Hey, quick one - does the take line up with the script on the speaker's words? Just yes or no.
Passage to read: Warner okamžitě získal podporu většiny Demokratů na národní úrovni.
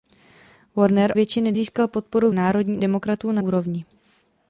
no